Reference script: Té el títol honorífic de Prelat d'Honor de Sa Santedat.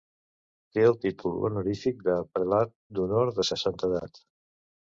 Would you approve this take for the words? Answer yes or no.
yes